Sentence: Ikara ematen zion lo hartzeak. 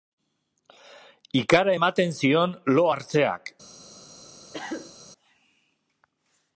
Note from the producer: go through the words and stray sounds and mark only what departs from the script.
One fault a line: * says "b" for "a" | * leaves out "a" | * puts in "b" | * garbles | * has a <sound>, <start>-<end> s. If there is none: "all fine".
* has a cough, 4.5-5.0 s